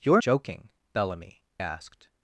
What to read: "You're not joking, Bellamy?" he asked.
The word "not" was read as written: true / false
false